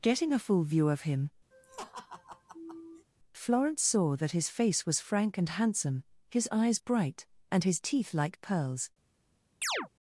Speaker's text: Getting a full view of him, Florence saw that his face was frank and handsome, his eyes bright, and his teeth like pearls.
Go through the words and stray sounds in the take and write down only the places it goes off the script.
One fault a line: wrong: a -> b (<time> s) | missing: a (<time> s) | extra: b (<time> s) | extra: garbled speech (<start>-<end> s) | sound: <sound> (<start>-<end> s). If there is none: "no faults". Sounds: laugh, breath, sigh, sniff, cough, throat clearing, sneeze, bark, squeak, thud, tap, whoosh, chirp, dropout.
sound: laugh (1.5-3.1 s)
sound: chirp (9.6-9.9 s)